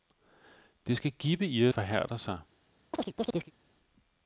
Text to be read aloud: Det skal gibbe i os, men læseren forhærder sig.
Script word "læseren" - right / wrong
wrong